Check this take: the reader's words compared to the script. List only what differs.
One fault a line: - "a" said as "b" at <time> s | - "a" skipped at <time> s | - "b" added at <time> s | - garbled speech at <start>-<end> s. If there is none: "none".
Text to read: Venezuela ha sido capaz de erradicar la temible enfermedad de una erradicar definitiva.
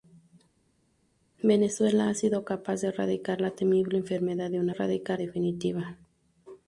none